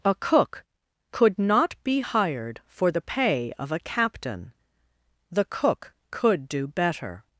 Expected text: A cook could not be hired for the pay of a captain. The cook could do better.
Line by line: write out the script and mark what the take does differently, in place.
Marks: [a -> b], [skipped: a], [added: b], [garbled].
A cook could not be hired for the pay of a captain. The cook could do better.